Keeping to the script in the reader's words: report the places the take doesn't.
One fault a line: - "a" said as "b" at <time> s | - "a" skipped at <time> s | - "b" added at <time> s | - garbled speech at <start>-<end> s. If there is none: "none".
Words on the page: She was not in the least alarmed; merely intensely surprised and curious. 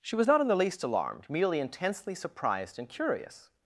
none